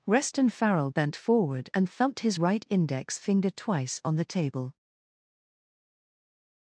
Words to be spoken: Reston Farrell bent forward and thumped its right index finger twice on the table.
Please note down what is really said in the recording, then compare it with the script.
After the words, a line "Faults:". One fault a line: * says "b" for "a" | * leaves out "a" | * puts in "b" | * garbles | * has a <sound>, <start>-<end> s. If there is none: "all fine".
Reston Farrell bent forward and thumped his right index finger twice on the table.
Faults:
* says "his" for "its"